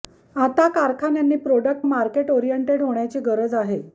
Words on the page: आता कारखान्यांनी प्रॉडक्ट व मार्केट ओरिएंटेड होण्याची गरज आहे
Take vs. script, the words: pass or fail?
fail